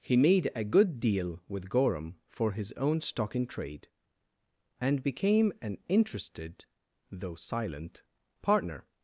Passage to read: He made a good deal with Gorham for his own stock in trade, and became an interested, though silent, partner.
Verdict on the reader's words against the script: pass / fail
pass